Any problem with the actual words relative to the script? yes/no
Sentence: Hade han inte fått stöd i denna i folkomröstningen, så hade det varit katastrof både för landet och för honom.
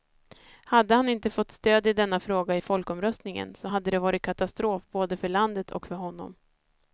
yes